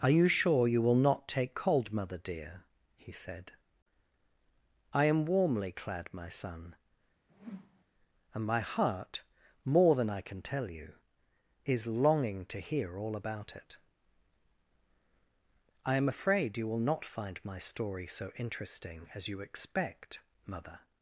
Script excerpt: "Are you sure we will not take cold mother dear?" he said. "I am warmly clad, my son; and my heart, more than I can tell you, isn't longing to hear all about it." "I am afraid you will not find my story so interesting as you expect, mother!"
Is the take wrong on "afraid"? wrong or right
right